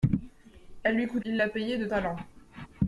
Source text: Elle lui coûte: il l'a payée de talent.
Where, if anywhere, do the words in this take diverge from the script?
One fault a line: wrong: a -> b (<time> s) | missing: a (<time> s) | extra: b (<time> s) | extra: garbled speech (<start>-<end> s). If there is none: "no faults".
no faults